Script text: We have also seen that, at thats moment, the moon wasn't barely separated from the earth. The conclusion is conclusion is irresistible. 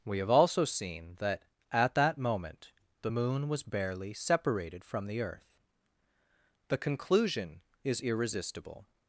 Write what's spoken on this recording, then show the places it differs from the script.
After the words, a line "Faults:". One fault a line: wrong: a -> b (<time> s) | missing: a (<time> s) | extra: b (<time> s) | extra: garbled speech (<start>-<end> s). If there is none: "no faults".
We have also seen that, at that moment, the moon was barely separated from the earth. The conclusion is irresistible.
Faults:
wrong: thats -> that (1.9 s)
wrong: wasn't -> was (3.5 s)
missing: conclusion is (8.0 s)